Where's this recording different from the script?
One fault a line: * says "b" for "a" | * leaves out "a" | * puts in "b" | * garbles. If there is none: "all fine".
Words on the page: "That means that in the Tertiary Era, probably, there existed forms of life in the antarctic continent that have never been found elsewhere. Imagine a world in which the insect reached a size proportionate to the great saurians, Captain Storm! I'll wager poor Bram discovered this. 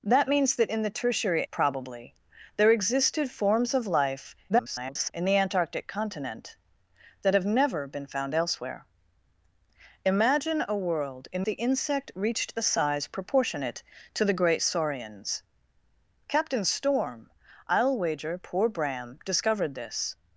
* leaves out "Era"
* garbles
* leaves out "which"